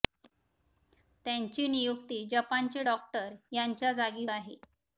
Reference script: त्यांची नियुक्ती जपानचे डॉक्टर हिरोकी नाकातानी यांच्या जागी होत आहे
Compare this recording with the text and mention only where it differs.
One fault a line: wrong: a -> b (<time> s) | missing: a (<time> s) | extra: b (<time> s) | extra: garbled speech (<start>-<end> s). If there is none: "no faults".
missing: हिरोकी नाकातानी (3.3 s)
missing: होत (4.3 s)